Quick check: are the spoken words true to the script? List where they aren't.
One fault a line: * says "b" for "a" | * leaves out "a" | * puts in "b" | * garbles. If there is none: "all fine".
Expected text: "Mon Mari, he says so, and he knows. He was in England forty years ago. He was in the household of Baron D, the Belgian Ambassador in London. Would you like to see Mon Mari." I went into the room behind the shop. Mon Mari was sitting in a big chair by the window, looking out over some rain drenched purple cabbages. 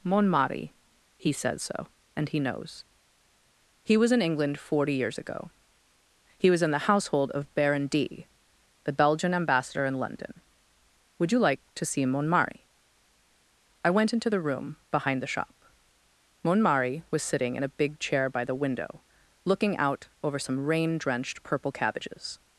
all fine